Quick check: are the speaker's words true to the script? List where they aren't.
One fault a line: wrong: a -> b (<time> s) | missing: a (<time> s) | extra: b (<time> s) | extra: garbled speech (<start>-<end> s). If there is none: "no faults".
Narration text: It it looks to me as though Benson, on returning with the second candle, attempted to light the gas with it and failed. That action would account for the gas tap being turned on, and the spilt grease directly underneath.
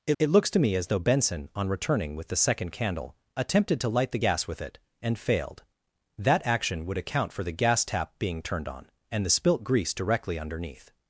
no faults